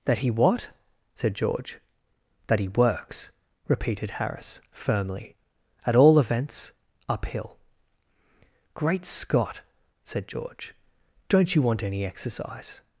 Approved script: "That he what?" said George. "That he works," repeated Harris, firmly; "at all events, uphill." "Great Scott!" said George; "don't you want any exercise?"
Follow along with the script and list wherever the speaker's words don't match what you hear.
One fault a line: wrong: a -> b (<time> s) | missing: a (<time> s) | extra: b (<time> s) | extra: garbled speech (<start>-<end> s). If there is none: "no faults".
no faults